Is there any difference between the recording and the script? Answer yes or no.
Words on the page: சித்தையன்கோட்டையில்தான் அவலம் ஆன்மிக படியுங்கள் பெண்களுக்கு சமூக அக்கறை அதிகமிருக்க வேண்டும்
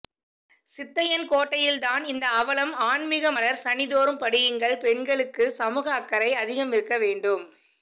yes